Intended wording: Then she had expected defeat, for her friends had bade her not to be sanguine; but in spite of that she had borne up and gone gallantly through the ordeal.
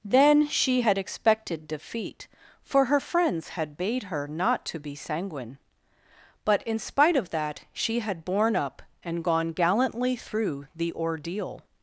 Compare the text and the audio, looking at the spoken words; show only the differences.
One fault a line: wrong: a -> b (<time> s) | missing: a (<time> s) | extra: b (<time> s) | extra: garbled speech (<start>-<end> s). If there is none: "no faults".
no faults